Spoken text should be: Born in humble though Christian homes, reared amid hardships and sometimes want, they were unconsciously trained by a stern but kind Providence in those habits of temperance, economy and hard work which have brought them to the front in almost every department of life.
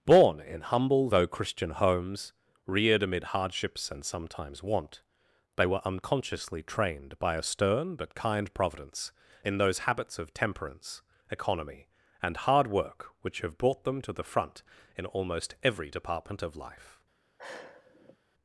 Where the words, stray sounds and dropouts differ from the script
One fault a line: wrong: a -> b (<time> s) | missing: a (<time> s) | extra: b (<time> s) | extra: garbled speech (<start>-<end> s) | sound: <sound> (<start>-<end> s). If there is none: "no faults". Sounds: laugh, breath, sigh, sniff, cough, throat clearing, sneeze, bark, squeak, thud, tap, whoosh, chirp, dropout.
sound: sigh (17.4-18.2 s)